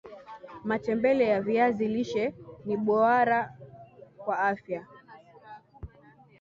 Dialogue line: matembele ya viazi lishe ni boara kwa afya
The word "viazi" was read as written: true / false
true